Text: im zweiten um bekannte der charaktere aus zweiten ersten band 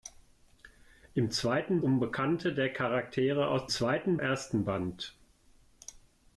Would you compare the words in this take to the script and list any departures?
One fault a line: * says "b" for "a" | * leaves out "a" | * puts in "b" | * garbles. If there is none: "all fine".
all fine